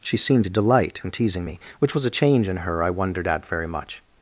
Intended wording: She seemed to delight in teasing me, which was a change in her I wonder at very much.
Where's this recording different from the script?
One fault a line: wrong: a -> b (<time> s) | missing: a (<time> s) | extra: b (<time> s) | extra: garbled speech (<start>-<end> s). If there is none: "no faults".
wrong: wonder -> wondered (2.9 s)